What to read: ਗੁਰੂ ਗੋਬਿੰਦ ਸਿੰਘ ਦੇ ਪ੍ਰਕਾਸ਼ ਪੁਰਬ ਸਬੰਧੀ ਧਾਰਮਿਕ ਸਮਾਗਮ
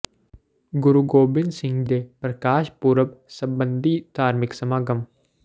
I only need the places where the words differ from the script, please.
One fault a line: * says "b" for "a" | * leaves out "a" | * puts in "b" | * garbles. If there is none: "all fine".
all fine